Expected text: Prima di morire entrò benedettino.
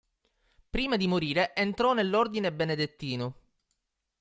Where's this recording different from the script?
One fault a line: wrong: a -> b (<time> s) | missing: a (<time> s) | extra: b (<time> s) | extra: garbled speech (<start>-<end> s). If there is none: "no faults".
extra: nell'Ordine (1.9 s)